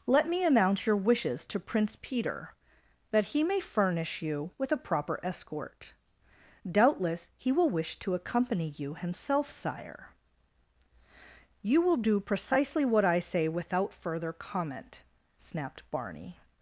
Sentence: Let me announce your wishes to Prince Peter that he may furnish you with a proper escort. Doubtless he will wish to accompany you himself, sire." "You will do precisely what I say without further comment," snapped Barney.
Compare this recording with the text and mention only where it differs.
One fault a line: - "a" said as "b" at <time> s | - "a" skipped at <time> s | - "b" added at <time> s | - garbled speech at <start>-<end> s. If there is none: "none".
none